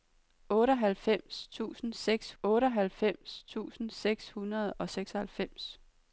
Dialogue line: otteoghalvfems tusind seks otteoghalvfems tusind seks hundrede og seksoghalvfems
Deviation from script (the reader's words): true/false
false